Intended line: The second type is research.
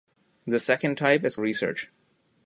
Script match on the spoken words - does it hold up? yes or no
yes